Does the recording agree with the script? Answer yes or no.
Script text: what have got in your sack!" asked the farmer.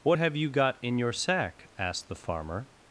no